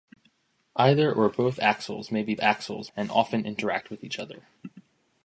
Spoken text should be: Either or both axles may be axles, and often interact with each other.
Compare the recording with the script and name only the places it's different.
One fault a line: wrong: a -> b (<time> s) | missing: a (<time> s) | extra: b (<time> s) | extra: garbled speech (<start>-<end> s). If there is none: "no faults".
no faults